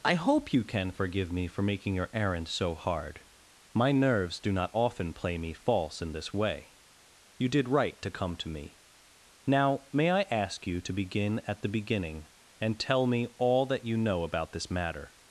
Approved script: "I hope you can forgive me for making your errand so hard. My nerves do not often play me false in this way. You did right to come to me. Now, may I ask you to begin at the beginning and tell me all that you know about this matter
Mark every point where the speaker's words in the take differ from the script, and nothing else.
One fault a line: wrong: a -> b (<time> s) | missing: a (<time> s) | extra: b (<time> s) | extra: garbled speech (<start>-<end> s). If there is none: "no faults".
no faults